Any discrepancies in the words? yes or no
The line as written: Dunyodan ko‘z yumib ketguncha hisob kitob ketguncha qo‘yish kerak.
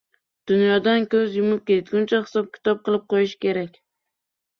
yes